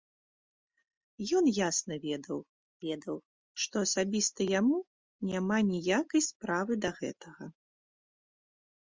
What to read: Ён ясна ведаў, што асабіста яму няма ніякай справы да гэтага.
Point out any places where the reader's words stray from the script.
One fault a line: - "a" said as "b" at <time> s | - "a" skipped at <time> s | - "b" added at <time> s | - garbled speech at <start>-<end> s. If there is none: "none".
- "ведаў" added at 2.8 s